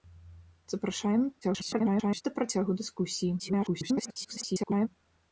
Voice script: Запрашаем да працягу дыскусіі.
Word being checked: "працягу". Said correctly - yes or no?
yes